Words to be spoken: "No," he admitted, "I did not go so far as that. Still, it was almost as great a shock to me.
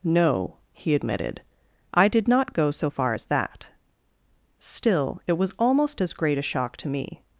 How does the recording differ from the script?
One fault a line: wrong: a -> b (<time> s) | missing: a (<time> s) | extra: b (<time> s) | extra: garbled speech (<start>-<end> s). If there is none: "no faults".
no faults